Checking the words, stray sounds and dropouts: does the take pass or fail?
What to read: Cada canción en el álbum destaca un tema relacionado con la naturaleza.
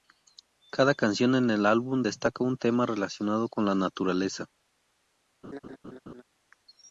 fail